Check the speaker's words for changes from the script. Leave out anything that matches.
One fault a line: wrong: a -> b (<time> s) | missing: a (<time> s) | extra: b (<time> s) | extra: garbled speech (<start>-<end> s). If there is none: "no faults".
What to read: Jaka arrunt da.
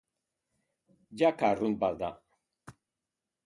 extra: bat (1.9 s)